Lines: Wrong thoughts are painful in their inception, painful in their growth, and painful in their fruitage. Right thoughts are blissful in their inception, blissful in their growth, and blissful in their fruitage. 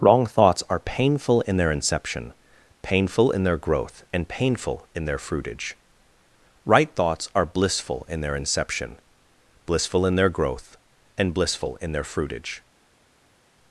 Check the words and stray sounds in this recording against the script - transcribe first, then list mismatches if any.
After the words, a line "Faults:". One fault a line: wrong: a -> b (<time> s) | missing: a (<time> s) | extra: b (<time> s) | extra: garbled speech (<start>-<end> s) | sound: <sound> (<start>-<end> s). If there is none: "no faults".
Wrong thoughts are painful in their inception, painful in their growth, and painful in their fruitage. Right thoughts are blissful in their inception, blissful in their growth, and blissful in their fruitage.
Faults:
no faults